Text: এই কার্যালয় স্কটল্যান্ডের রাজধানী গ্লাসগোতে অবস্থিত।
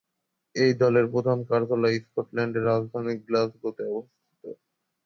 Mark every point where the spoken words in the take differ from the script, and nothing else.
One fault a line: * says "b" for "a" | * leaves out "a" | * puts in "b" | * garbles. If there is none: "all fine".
* puts in "দলের প্রধান"